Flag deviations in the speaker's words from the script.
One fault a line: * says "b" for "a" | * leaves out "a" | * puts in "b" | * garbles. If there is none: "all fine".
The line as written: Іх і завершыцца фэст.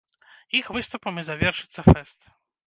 * puts in "выступам"